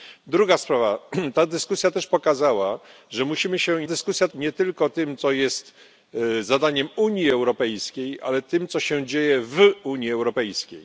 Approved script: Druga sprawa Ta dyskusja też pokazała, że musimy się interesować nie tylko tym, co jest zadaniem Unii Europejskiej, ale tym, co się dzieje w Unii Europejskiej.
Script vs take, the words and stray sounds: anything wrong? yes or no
yes